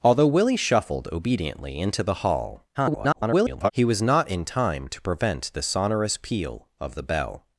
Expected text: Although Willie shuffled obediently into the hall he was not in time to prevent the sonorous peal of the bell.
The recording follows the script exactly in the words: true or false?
false